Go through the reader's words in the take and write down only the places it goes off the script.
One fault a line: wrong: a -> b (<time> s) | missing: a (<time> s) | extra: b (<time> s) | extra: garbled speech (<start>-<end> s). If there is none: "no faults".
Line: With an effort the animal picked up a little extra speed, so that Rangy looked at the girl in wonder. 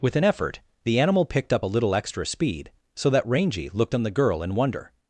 wrong: at -> on (3.9 s)